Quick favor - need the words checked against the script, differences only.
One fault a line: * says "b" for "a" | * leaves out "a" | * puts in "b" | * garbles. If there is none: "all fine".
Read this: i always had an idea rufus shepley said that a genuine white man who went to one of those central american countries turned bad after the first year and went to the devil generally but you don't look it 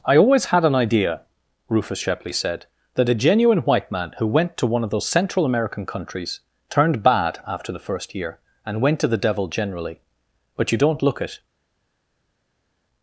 all fine